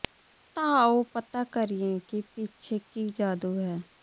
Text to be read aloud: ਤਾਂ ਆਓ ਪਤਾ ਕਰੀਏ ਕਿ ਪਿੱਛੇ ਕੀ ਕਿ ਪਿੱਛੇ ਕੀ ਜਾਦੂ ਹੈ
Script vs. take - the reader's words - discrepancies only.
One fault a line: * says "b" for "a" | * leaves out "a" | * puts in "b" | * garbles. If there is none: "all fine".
* leaves out "ਕਿ ਪਿੱਛੇ ਕੀ"